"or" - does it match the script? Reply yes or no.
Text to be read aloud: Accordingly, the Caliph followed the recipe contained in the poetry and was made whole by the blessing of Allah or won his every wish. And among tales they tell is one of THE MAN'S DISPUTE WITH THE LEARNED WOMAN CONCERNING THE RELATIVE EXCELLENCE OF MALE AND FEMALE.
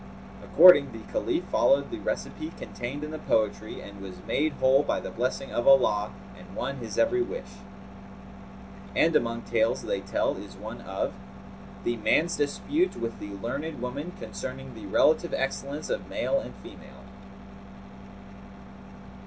no